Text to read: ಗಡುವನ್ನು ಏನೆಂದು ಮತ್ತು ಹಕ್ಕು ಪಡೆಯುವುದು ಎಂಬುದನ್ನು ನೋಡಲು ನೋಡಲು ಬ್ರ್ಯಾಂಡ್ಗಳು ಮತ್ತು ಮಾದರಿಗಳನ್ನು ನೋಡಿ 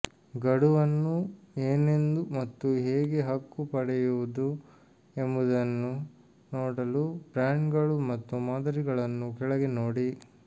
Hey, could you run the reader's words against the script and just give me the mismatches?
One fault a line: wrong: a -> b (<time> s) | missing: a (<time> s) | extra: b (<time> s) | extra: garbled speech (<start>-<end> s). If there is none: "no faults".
extra: ಹೇಗೆ (2.8 s)
missing: ನೋಡಲು (7.0 s)
extra: ಕೆಳಗೆ (9.4 s)